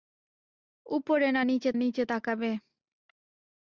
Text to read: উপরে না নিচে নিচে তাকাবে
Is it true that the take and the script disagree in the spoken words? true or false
false